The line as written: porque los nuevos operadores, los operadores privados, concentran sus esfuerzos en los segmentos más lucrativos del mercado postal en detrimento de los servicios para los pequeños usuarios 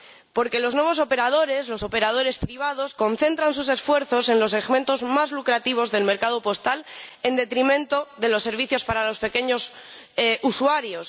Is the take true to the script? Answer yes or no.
yes